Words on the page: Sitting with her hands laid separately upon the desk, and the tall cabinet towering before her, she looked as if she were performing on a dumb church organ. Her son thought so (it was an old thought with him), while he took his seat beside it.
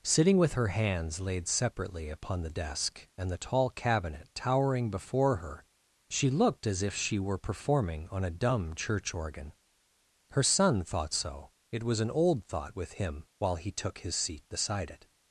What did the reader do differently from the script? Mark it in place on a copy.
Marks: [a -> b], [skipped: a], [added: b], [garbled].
Sitting with her hands laid separately upon the desk, and the tall cabinet towering before her, she looked as if she were performing on a dumb church organ. Her son thought so (it was an old thought with him), while he took his seat beside it.